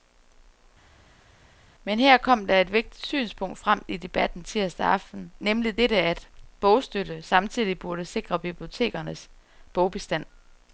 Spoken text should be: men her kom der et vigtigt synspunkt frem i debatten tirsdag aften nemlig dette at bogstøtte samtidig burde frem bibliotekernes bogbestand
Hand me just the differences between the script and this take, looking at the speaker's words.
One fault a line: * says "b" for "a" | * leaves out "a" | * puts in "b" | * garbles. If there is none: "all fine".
* says "sikre" for "frem"